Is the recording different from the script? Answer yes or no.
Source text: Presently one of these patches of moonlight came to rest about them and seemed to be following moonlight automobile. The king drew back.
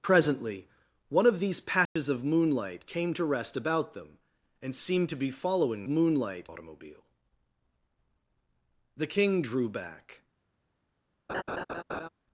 no